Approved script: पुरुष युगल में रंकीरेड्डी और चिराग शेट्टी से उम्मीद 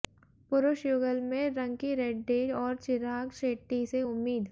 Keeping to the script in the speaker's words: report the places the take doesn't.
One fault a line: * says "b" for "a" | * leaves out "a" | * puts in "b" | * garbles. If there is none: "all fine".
all fine